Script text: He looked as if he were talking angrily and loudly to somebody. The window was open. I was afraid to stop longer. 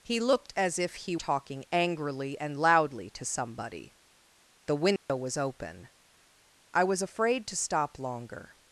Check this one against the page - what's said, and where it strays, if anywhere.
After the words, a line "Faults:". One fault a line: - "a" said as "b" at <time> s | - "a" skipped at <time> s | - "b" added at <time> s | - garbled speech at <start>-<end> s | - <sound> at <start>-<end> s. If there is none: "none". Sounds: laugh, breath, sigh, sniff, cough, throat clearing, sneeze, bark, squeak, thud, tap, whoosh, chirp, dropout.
He looked as if he talking angrily and loudly to somebody. The window was open. I was afraid to stop longer.
Faults:
- "were" skipped at 1.1 s
- dropout at 5.0-5.1 s